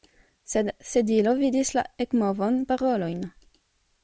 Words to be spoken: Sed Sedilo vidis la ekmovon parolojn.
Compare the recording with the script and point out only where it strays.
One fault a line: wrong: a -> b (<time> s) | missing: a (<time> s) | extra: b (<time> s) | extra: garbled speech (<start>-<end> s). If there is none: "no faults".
no faults